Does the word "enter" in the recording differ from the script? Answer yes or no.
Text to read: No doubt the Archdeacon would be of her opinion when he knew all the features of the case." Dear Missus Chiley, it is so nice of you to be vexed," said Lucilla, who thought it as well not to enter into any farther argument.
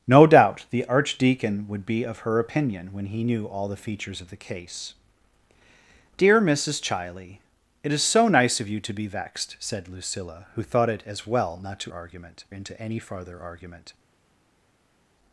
yes